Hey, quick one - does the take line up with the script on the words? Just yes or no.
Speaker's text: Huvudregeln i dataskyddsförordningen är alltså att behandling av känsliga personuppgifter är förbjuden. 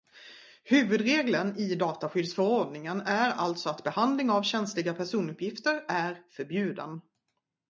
yes